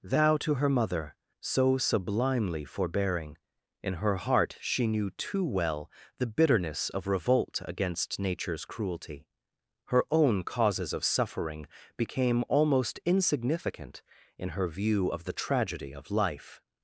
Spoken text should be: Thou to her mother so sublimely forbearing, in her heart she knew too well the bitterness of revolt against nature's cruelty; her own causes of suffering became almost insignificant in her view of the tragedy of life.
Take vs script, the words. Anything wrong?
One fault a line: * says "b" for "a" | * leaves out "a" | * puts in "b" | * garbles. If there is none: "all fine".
all fine